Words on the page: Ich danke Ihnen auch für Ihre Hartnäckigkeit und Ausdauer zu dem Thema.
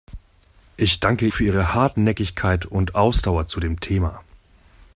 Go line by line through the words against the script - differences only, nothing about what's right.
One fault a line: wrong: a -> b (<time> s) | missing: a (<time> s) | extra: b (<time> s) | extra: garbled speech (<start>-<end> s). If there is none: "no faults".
missing: Ihnen auch (1.3 s)